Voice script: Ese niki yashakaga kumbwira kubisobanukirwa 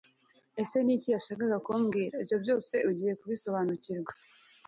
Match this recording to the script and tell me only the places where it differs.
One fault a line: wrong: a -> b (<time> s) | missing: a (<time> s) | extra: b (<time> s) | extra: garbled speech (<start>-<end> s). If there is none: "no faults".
extra: ibyo byose ugiye (2.2 s)